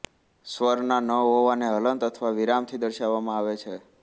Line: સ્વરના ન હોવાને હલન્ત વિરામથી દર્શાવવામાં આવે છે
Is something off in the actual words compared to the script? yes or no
yes